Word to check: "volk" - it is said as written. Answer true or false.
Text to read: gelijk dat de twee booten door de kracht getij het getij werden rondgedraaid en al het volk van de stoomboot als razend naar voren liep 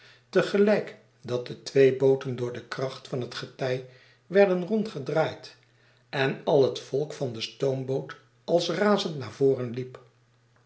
true